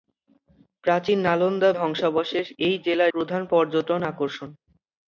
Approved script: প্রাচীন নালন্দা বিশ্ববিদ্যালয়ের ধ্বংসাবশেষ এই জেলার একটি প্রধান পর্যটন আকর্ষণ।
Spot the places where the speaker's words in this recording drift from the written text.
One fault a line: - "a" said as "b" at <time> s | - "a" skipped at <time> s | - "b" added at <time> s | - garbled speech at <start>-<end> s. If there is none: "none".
- "বিশ্ববিদ্যালয়ের" skipped at 1.7 s
- "একটি" skipped at 3.1 s